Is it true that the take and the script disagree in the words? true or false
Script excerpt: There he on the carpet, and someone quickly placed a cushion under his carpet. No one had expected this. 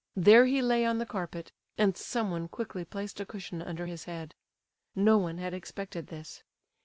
true